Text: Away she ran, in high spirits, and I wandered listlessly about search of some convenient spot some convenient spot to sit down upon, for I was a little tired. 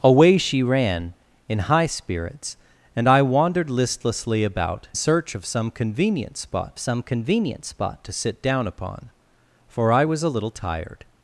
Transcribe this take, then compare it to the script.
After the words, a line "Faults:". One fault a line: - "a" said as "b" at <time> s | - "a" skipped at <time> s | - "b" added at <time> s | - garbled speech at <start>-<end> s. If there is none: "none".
Away she ran, in high spirits, and I wandered listlessly about search of some convenient spot some convenient spot to sit down upon, for I was a little tired.
Faults:
none